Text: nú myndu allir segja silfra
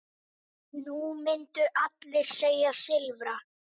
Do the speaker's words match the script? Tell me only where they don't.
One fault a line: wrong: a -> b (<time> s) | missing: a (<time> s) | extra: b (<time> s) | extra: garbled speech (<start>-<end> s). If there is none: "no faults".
no faults